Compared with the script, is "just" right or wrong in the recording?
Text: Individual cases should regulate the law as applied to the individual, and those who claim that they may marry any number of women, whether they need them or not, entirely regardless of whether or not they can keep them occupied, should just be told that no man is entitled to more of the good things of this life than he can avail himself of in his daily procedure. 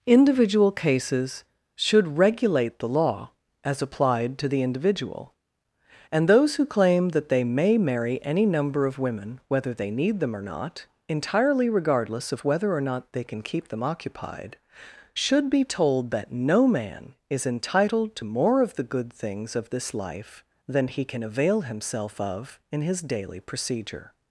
wrong